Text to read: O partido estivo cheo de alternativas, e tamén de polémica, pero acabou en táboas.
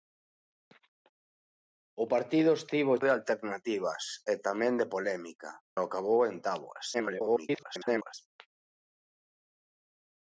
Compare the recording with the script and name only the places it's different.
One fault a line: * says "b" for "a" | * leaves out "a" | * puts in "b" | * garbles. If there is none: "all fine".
* leaves out "cheo"
* leaves out "pero"
* garbles